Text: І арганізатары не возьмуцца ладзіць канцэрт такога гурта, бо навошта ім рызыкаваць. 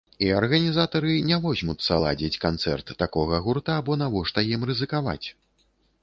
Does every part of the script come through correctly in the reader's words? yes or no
yes